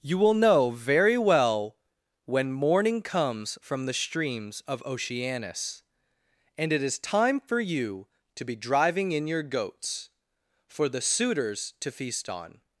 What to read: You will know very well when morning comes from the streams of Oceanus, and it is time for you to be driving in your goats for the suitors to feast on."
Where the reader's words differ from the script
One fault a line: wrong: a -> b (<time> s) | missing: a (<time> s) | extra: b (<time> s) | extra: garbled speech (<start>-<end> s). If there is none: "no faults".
no faults